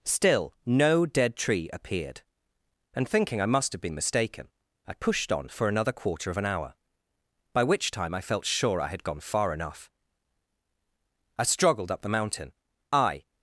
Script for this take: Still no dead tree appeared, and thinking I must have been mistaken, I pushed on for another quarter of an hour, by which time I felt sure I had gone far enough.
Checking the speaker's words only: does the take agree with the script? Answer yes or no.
no